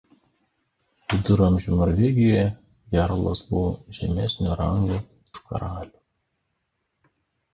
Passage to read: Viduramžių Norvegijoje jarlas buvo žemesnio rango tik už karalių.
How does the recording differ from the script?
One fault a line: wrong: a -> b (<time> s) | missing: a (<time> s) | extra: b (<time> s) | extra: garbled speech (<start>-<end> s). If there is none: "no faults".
missing: tik (5.0 s)